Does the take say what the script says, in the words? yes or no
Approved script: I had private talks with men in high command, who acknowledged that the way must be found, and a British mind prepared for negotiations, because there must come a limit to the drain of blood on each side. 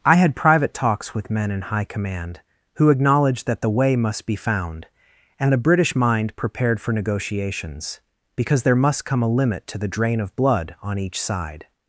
yes